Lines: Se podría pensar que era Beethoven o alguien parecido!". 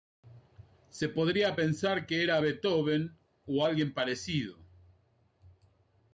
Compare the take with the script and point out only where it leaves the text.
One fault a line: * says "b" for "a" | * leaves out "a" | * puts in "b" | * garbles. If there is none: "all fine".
all fine